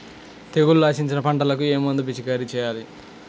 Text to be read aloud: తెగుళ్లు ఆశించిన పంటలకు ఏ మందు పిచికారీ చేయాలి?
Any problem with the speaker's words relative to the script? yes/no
no